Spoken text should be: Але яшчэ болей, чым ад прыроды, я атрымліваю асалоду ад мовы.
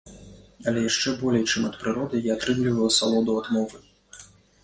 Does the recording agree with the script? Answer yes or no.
yes